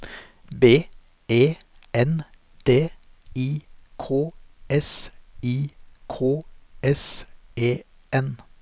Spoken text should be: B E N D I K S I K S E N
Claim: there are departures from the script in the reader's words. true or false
false